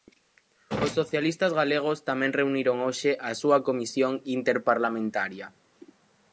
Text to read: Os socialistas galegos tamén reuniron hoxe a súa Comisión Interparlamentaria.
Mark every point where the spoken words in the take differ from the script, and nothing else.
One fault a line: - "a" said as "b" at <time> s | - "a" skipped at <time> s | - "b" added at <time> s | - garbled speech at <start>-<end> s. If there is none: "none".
none